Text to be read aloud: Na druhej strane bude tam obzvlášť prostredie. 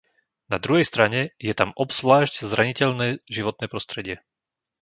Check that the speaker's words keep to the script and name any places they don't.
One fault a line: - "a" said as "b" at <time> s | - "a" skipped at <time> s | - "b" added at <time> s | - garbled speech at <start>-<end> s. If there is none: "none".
- "bude" said as "je" at 1.4 s
- "zraniteľné životné" added at 2.4 s